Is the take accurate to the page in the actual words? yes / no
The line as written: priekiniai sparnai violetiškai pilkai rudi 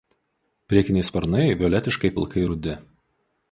yes